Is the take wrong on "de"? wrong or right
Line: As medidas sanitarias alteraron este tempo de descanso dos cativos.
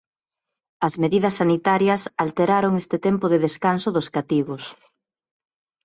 right